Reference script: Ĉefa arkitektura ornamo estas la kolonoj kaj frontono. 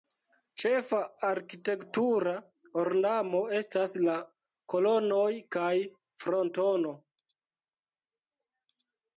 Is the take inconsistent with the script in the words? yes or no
no